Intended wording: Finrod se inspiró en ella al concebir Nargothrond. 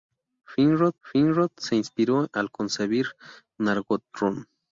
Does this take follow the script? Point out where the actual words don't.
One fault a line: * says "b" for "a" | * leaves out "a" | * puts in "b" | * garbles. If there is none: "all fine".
* puts in "finrod"
* leaves out "en ella"